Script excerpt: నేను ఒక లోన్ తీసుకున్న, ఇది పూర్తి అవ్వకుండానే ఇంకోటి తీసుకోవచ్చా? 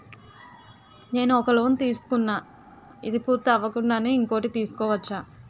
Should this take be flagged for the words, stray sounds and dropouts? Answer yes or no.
no